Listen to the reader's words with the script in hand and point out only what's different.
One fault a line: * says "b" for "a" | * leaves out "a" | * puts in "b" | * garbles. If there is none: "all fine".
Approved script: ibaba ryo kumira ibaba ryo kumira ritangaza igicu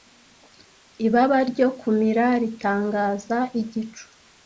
* leaves out "ibaba ryo kumira"